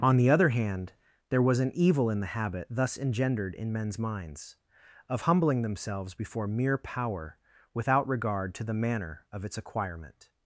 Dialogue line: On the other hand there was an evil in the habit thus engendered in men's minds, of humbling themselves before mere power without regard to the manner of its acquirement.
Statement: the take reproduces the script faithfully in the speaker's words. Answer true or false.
true